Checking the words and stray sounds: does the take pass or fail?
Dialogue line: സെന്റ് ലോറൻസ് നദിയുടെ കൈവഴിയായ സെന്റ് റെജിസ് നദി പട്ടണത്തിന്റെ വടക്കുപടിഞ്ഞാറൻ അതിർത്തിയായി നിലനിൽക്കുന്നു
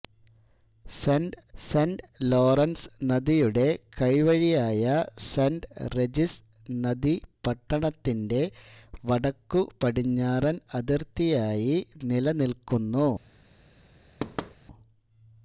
fail